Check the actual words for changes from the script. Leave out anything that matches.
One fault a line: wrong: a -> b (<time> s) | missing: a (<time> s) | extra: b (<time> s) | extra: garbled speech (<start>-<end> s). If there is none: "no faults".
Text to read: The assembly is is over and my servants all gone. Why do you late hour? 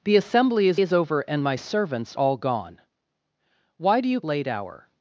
no faults